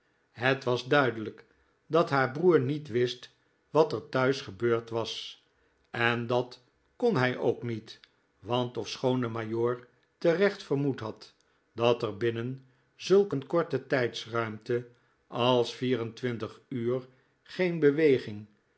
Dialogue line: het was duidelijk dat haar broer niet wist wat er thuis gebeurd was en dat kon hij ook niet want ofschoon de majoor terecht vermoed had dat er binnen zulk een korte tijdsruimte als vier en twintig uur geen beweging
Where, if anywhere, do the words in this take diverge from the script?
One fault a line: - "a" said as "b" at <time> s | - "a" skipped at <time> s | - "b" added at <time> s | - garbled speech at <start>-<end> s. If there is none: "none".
none